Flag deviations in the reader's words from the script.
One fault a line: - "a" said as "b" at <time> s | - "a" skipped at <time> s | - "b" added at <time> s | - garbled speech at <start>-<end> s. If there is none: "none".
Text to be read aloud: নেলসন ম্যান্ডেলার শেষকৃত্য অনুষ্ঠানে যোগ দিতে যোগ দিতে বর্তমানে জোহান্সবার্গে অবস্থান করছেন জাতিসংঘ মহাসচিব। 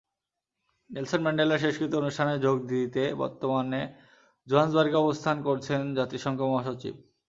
- "যোগ দিতে" skipped at 3.0 s